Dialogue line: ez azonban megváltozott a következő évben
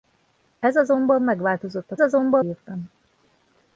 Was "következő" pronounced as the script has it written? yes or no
no